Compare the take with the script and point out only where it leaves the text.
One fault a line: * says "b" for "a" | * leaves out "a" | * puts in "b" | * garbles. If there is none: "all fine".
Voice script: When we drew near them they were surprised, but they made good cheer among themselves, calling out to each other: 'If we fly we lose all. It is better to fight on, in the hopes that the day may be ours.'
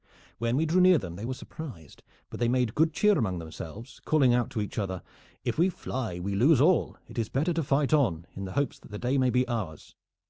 all fine